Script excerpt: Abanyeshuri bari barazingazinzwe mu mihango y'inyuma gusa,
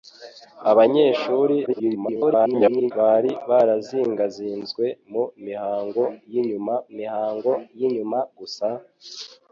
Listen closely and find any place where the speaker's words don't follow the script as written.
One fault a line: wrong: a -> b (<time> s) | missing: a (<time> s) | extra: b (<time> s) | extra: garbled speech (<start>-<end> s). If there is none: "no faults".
extra: garbled speech (1.7-2.9 s)
extra: mihango y'inyuma (7.0 s)